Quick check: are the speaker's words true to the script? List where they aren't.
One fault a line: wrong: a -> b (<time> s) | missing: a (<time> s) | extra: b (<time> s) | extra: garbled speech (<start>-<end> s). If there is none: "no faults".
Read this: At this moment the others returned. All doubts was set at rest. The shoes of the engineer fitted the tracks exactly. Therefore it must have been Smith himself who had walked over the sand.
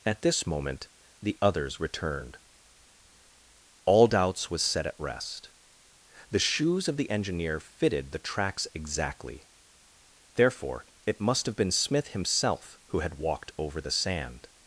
no faults